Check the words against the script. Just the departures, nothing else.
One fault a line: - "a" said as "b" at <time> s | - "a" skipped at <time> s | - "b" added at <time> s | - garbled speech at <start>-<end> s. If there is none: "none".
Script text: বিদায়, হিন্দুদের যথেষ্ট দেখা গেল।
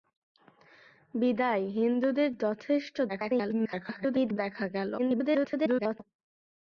- garbled speech at 3.1-4.4 s
- garbled speech at 5.0-6.0 s